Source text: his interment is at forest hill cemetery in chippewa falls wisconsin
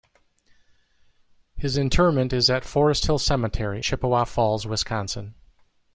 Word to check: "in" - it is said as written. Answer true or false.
false